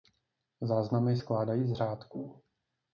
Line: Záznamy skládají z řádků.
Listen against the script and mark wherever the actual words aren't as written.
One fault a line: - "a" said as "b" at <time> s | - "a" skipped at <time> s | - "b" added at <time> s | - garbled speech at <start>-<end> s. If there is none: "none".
none